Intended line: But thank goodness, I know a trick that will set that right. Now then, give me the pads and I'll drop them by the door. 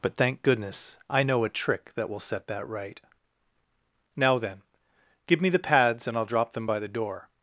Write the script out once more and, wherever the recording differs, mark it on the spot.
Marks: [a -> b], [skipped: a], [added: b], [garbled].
But thank goodness, I know a trick that will set that right. Now then, give me the pads and I'll drop them by the door.